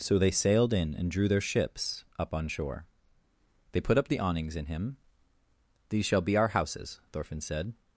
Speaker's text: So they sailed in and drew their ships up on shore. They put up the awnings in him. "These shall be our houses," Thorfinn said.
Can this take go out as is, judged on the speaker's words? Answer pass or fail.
pass